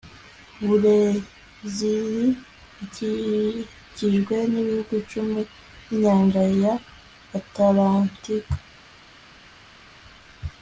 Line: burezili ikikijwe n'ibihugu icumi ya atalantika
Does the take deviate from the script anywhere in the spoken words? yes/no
yes